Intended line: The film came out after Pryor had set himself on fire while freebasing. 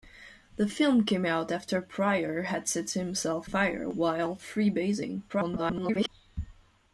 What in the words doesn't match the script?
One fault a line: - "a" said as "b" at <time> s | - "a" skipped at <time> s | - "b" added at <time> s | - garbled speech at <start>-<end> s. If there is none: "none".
- "on" skipped at 3.5 s
- garbled speech at 5.3-6.1 s